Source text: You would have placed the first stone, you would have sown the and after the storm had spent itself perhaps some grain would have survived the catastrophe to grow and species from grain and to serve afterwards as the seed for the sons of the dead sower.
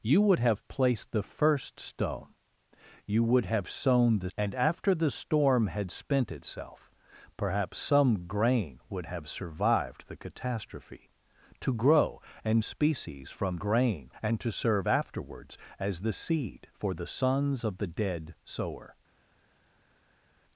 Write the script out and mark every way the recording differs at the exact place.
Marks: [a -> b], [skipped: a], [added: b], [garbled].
You would have placed the first stone, you would have sown the and after the storm had spent itself perhaps some grain would have survived the catastrophe to grow and species from grain and to serve afterwards as the seed for the sons of the dead sower.